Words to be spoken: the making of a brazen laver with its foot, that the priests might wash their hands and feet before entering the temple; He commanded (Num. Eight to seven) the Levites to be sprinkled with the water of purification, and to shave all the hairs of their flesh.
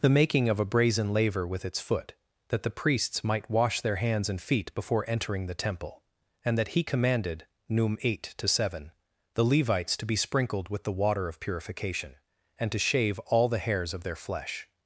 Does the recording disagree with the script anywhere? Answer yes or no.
yes